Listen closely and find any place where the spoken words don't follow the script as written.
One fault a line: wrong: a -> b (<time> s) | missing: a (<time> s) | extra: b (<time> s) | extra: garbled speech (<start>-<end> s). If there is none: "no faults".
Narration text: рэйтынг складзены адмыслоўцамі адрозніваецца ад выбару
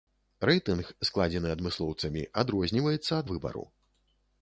no faults